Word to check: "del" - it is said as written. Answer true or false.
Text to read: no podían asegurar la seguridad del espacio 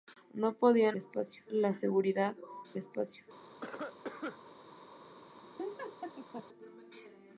false